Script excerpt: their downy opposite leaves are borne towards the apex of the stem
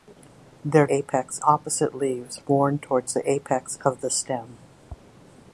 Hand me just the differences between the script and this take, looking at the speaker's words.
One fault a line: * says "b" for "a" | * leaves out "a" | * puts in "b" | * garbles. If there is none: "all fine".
* says "apex" for "downy"
* leaves out "are"